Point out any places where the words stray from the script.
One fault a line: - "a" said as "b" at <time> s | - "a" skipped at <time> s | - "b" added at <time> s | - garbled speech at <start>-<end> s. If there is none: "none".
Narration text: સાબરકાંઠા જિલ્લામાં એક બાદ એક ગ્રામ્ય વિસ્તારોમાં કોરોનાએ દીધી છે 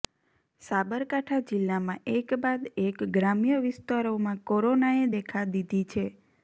- "દેખા" added at 5.1 s